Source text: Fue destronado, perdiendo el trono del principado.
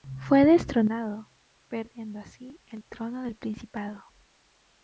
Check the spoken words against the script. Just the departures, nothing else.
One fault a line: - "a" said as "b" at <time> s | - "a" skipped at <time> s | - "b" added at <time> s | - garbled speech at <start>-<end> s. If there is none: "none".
- "así" added at 2.2 s